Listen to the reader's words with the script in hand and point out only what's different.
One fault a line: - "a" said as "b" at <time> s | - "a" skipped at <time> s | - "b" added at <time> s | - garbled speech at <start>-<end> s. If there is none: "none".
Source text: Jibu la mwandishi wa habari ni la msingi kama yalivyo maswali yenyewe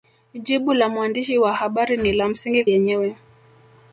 - "kama yalivyo maswali" skipped at 2.6 s